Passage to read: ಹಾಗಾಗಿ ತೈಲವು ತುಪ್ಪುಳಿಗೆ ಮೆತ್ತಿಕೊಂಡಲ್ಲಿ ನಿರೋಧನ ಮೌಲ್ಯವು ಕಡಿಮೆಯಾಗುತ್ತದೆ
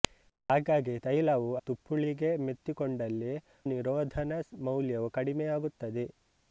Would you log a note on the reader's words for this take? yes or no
no